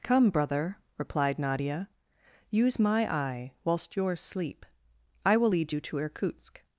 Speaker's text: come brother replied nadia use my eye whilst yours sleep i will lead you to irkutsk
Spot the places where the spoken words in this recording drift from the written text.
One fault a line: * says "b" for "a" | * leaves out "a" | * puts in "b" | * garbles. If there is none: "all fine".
all fine